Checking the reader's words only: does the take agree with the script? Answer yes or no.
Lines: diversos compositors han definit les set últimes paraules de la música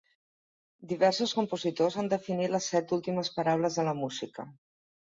yes